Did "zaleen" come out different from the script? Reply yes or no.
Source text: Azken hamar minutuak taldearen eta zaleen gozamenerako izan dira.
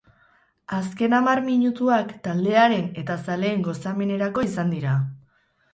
no